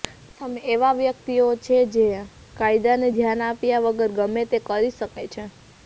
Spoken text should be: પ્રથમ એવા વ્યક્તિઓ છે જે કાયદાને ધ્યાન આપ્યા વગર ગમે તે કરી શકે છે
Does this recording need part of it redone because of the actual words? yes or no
no